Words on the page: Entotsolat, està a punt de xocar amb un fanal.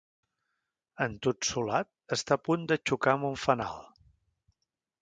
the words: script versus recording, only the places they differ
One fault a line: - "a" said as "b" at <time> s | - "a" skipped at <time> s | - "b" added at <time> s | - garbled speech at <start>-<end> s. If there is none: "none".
none